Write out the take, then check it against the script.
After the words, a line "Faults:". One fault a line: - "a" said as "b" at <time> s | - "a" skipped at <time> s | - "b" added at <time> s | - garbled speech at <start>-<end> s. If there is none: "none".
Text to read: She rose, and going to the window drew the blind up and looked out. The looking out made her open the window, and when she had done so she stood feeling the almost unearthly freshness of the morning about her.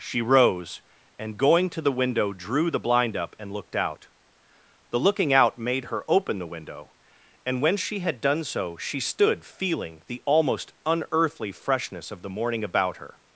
She rose, and going to the window drew the blind up and looked out. The looking out made her open the window, and when she had done so she stood feeling the almost unearthly freshness of the morning about her.
Faults:
none